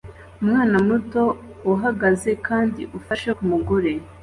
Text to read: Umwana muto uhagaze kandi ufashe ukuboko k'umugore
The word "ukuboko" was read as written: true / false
false